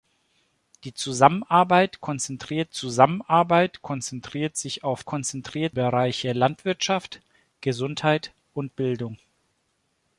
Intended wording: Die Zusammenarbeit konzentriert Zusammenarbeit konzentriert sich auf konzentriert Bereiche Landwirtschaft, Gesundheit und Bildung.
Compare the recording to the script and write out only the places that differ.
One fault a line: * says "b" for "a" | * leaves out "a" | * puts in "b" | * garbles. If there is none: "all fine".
all fine